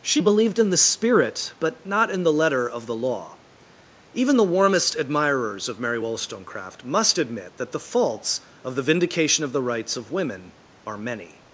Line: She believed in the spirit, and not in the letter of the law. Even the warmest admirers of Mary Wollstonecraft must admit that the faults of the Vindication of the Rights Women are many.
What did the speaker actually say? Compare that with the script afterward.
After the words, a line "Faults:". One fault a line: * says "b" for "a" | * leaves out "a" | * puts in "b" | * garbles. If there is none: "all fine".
She believed in the spirit, but not in the letter of the law. Even the warmest admirers of Mary Wollstonecraft must admit that the faults of the Vindication of the Rights of Women are many.
Faults:
* says "but" for "and"
* puts in "of"